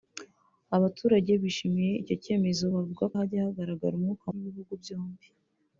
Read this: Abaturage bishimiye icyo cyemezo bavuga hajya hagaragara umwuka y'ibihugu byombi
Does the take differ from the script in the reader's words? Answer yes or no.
no